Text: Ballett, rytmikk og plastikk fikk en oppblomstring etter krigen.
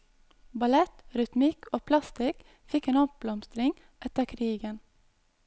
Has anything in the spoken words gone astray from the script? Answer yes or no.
no